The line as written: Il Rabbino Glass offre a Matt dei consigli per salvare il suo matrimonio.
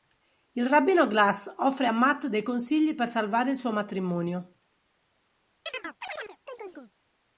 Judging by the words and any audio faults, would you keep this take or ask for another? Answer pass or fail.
fail